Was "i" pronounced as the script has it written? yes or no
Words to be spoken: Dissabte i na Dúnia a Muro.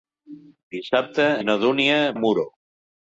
yes